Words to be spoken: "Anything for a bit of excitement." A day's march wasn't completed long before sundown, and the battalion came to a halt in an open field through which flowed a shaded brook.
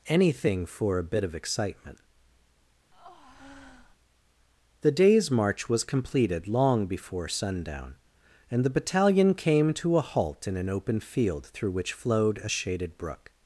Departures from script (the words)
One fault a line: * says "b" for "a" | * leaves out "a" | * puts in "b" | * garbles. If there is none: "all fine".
* says "The" for "A"
* says "was" for "wasn't"